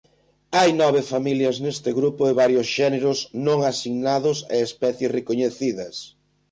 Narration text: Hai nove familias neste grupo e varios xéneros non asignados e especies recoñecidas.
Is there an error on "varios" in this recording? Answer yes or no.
no